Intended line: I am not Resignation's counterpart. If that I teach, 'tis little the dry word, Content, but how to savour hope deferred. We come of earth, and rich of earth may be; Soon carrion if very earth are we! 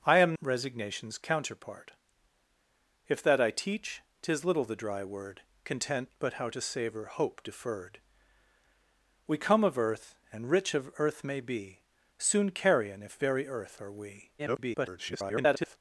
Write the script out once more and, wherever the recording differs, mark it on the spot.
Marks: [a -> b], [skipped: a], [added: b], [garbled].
I am [skipped: not] Resignation's counterpart. If that I teach, 'tis little the dry word, Content, but how to savour hope deferred. We come of earth, and rich of earth may be; Soon carrion if very earth are we! [garbled]